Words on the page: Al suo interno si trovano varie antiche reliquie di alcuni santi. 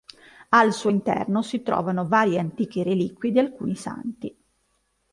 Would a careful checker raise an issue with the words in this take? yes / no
no